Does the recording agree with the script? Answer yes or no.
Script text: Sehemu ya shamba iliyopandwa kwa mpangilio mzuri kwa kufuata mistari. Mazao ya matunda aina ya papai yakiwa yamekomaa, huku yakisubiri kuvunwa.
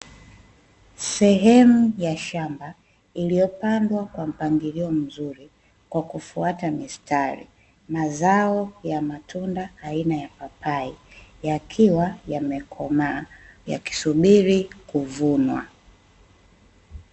no